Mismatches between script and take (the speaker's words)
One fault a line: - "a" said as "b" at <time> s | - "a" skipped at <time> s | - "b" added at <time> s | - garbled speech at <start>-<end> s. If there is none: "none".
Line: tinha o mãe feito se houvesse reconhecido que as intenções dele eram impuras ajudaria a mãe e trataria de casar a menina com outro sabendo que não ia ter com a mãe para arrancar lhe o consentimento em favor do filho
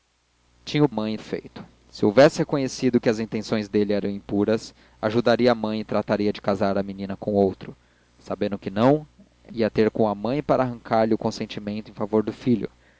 none